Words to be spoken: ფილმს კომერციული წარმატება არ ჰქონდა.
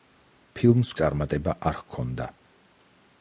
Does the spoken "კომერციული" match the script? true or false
false